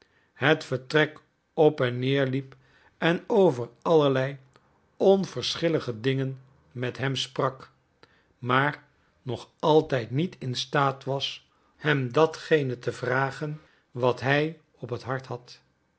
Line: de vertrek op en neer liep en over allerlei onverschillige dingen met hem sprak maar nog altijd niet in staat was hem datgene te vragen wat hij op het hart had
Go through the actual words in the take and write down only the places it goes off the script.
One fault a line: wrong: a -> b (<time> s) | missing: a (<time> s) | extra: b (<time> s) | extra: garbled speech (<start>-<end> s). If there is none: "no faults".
wrong: de -> het (0.3 s)